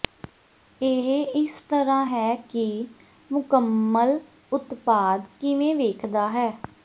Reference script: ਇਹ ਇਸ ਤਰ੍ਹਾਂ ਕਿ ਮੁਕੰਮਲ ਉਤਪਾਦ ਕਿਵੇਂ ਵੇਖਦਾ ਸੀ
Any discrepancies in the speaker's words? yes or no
yes